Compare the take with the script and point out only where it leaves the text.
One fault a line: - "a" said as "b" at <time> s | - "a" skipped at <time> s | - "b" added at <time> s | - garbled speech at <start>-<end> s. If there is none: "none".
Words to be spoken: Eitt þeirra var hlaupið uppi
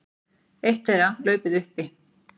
- "var" skipped at 1.1 s